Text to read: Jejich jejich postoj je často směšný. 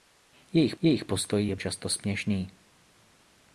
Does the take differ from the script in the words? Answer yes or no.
no